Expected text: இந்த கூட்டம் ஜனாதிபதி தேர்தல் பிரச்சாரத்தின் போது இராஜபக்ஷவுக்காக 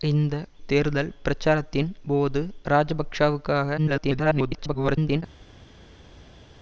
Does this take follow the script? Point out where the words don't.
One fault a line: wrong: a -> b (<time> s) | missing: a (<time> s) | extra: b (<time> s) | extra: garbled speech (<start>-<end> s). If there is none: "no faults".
missing: கூட்டம் ஜனாதிபதி (0.3 s)
extra: garbled speech (3.8-5.2 s)